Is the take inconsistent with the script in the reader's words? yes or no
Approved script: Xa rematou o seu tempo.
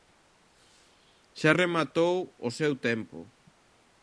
no